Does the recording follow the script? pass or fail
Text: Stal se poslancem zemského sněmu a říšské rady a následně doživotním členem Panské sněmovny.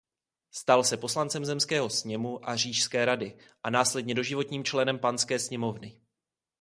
pass